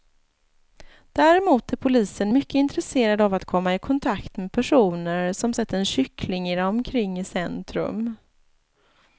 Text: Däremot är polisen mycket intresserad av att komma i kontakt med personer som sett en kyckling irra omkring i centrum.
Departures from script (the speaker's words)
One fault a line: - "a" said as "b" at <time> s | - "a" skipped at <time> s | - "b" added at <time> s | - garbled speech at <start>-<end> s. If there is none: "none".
none